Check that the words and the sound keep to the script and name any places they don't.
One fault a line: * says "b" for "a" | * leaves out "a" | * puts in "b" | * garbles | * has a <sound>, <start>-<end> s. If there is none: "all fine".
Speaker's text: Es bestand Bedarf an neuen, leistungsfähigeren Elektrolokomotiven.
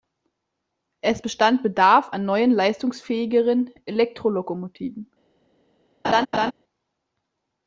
* has a laugh, 6.0-6.5 s